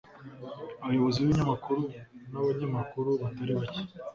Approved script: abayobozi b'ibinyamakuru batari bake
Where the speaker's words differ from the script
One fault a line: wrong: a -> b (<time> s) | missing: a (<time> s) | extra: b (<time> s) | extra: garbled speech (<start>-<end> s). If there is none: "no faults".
extra: n'abanyamakuru (2.3 s)